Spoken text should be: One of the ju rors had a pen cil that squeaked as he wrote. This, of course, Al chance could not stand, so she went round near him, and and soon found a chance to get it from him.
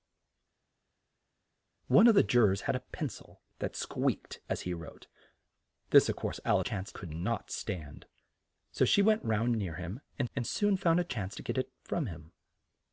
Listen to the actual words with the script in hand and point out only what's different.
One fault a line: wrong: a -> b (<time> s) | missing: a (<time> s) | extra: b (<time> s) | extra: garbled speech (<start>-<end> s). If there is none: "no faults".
no faults